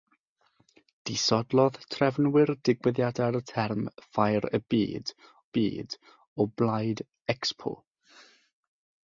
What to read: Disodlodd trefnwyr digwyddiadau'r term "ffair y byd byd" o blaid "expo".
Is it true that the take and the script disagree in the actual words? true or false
false